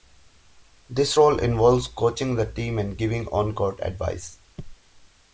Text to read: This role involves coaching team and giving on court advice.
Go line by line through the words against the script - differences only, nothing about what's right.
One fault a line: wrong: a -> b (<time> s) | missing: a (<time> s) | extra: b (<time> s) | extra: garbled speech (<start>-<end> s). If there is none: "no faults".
extra: the (2.4 s)